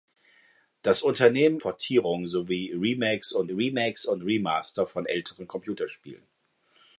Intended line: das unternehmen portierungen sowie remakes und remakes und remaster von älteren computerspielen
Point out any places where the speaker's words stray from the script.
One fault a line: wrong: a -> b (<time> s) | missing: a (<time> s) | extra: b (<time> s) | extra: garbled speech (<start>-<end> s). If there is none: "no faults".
no faults